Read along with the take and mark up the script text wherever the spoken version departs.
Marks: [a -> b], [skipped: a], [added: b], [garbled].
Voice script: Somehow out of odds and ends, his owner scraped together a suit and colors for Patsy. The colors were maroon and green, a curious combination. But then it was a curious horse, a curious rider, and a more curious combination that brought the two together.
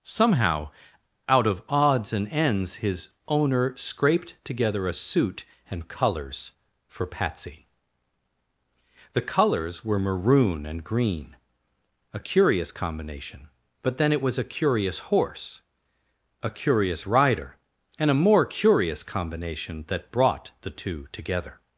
Somehow out of odds and ends, his owner scraped together a suit and colors for Patsy. The colors were maroon and green, a curious combination. But then it was a curious horse, a curious rider, and a more curious combination that brought the two together.